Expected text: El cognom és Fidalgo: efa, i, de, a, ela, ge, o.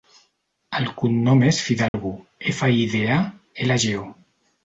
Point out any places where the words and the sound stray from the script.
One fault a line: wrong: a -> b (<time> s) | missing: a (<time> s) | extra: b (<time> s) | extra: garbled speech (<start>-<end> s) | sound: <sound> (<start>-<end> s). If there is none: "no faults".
sound: dropout (1.9-1.9 s)